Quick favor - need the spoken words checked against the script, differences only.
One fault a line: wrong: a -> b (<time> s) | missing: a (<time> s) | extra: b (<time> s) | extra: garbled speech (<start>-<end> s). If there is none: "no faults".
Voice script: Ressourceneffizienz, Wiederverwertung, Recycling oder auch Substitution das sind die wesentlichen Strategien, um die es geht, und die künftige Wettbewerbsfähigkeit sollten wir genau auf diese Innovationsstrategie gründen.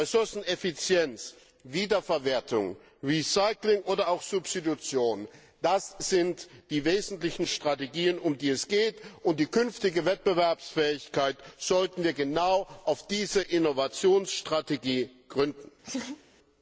no faults